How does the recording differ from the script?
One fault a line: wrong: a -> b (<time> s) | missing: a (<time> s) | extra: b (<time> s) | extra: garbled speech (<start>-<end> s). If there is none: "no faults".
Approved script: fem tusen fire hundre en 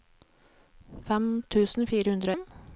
no faults